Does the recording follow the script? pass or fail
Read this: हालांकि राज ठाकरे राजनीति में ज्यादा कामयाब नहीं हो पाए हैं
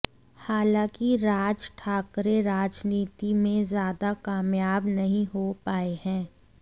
pass